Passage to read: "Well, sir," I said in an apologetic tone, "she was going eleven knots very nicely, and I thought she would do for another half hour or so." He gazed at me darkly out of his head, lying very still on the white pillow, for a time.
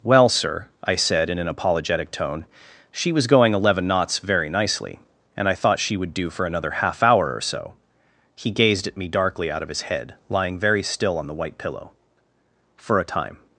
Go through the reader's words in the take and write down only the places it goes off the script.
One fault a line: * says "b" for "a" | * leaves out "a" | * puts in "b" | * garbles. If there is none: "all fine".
all fine